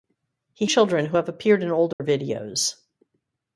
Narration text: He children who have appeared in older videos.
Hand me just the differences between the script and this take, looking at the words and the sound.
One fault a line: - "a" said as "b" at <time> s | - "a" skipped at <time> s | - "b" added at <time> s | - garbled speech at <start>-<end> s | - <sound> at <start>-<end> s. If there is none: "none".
- dropout at 1.9-2.0 s